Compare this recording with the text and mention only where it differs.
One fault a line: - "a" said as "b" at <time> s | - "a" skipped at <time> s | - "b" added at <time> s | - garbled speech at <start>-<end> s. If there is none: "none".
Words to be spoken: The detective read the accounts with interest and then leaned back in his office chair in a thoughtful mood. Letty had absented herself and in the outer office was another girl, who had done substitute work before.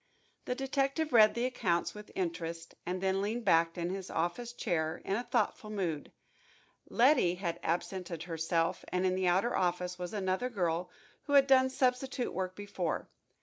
none